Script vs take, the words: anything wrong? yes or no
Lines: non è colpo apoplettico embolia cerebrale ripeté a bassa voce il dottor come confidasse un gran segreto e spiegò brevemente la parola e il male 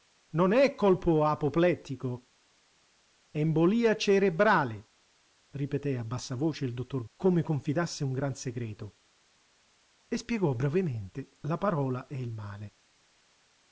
no